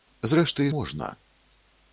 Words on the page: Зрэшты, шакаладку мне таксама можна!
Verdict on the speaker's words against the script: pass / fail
fail